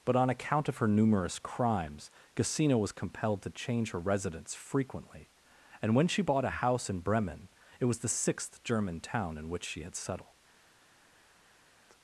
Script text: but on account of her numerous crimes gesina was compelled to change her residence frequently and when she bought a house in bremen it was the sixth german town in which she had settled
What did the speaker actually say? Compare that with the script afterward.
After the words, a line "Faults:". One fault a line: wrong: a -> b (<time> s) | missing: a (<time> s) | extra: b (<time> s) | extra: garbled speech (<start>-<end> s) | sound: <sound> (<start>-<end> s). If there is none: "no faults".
but on account of her numerous crimes gesina was compelled to change her residence frequently and when she bought a house in bremen it was the sixth german town in which she had settled
Faults:
no faults